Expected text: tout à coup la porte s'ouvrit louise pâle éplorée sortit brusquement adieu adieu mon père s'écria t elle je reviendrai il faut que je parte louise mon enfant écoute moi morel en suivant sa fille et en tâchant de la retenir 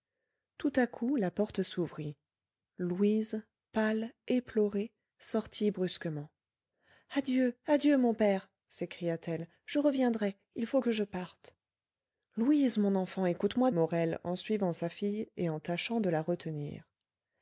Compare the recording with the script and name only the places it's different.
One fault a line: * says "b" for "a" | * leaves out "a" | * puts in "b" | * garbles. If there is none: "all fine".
all fine